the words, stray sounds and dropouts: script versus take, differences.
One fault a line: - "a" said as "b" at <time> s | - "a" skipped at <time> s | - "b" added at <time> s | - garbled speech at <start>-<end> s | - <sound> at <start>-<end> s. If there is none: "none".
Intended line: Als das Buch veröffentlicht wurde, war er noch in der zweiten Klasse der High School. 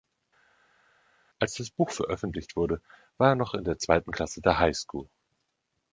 none